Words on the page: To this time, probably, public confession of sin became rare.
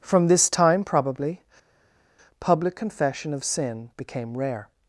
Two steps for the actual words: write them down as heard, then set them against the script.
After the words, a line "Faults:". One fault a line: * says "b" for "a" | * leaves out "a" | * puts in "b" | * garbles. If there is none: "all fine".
From this time, probably, public confession of sin became rare.
Faults:
* says "From" for "To"